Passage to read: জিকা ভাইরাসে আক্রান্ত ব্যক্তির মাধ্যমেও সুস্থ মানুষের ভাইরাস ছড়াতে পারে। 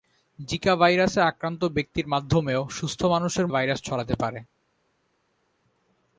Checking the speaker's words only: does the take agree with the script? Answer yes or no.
yes